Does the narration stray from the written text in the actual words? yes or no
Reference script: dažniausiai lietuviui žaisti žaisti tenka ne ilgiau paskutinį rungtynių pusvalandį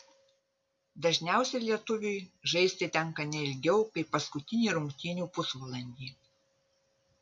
yes